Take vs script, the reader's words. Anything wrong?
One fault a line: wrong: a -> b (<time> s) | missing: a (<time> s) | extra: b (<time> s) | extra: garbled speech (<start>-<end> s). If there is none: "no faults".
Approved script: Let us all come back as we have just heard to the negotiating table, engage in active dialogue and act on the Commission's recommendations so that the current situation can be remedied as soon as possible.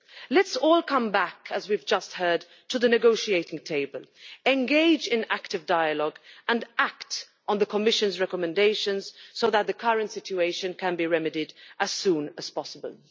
no faults